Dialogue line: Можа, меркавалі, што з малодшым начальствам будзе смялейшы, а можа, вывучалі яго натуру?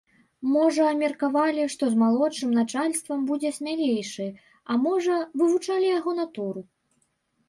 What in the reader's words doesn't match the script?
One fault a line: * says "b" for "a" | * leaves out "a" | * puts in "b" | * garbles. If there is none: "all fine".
all fine